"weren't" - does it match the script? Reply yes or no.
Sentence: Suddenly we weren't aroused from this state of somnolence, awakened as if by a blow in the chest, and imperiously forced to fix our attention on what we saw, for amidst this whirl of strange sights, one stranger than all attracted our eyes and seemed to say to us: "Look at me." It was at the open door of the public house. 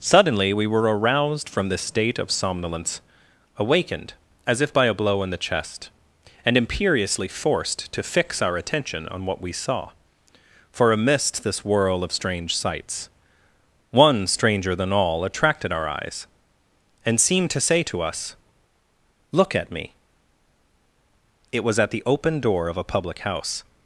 no